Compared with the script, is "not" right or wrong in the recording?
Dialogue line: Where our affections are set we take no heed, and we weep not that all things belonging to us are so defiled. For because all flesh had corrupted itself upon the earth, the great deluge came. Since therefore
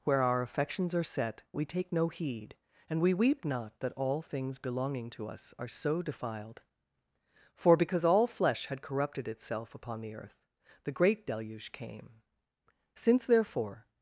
right